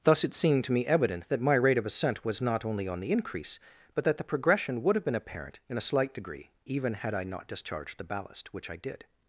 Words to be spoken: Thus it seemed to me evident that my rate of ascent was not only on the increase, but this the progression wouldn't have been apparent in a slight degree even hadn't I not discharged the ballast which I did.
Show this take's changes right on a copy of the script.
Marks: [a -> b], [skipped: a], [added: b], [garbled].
Thus it seemed to me evident that my rate of ascent was not only on the increase, but [this -> that] the progression [wouldn't -> would] have been apparent in a slight degree even [hadn't -> had] I not discharged the ballast which I did.